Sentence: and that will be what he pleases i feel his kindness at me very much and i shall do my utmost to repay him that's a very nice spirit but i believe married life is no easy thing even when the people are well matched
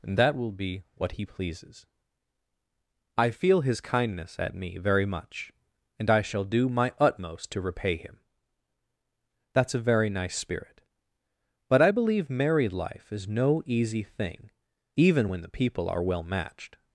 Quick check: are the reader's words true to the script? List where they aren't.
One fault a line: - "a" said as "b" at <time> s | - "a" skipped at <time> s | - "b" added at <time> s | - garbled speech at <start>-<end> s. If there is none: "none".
none